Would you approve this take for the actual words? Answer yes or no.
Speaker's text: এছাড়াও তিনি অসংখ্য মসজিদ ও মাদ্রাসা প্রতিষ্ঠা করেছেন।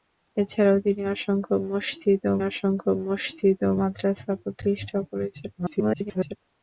no